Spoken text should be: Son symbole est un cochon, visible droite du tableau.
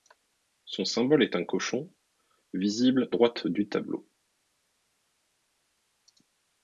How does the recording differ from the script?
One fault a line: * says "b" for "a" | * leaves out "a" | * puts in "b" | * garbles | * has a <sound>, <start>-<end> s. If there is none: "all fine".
all fine